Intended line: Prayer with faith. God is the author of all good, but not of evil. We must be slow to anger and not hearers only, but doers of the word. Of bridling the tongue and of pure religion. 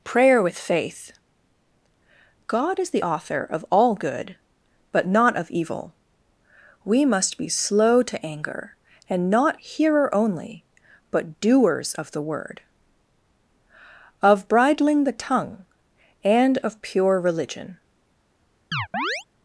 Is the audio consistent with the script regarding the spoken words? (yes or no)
no